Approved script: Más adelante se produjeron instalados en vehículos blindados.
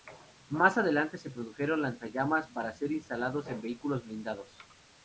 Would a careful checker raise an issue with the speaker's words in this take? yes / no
yes